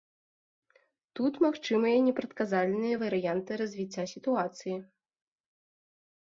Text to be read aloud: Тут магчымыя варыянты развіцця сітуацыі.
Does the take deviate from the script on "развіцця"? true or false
false